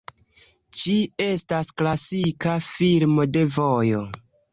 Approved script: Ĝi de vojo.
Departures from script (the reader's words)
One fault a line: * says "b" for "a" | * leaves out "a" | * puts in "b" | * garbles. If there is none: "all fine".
* puts in "estas klasika filmo"